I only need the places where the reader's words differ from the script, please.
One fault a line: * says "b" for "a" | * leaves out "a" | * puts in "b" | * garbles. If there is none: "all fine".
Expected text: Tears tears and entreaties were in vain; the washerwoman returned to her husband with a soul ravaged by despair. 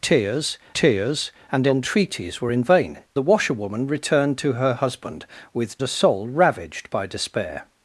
all fine